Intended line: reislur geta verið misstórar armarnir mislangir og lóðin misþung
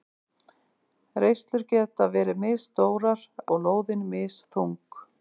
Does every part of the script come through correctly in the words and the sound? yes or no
no